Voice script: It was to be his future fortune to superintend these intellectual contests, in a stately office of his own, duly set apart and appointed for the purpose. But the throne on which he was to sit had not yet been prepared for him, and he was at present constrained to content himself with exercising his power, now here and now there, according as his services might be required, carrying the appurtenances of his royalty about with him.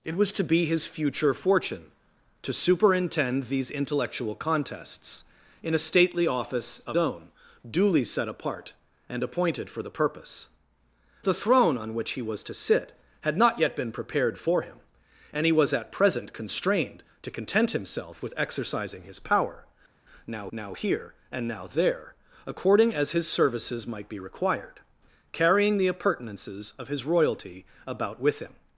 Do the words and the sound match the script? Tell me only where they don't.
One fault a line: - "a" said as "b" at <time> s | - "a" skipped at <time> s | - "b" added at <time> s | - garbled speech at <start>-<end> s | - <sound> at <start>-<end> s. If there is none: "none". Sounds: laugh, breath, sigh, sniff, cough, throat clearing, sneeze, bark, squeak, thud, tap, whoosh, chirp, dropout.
- "his" skipped at 7.0 s
- "But" skipped at 10.5 s
- "now" added at 20.5 s